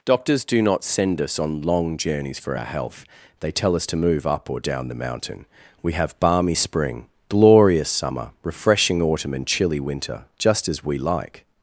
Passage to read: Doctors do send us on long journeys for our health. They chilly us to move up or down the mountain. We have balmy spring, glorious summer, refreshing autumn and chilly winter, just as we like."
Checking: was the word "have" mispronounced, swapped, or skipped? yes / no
no